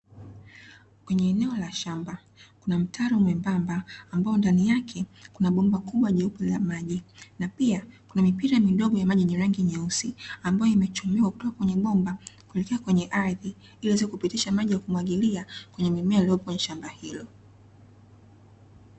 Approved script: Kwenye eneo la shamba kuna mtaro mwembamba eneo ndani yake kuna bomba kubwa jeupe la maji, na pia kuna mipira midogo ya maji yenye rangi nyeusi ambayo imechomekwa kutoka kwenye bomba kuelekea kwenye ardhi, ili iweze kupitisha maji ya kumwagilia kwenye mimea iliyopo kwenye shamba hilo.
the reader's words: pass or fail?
fail